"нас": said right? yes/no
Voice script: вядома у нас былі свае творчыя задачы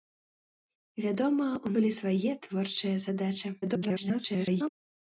no